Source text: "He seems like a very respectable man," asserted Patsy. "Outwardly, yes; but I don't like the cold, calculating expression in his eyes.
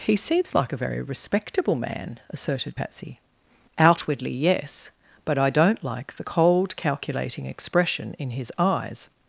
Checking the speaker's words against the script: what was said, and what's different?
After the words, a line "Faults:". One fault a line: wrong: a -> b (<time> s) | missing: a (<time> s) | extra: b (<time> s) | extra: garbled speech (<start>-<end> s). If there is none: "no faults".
"He seems like a very respectable man," asserted Patsy. "Outwardly, yes; but I don't like the cold, calculating expression in his eyes.
Faults:
no faults